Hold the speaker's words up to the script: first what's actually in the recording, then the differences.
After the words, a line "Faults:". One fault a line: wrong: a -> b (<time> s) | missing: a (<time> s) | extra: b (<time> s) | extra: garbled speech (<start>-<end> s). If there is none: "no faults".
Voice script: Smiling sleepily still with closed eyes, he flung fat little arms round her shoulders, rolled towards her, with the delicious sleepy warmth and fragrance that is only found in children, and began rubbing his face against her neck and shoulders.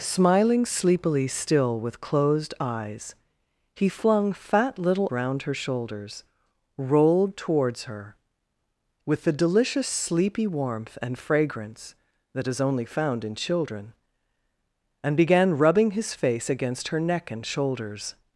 Smiling sleepily still with closed eyes, he flung fat little round her shoulders, rolled towards her, with the delicious sleepy warmth and fragrance that is only found in children, and began rubbing his face against her neck and shoulders.
Faults:
missing: arms (5.1 s)